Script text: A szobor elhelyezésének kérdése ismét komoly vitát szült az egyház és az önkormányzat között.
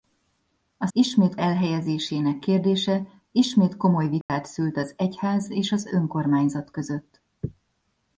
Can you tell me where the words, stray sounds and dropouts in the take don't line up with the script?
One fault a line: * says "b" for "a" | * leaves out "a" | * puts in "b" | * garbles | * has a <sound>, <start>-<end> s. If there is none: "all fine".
* says "ismét" for "szobor"
* has a dropout, 4.2-4.3 s